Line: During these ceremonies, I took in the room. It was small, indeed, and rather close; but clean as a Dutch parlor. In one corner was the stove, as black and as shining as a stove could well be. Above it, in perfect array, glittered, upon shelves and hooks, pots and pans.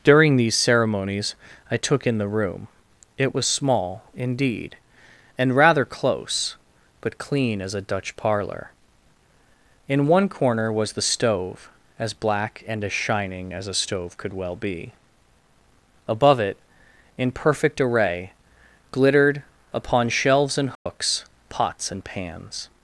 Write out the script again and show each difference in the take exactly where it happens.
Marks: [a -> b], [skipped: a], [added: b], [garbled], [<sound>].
During these ceremonies, I took in the room. It was small, indeed, and rather close; but clean as a Dutch parlor. In one corner was the stove, as black and as shining as a stove could well be. Above it, in perfect array, glittered, upon shelves and hooks, [dropout] pots and pans.